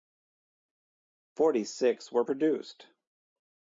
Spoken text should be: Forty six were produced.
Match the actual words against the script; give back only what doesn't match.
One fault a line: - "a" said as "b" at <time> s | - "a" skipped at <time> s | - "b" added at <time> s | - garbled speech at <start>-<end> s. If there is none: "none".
none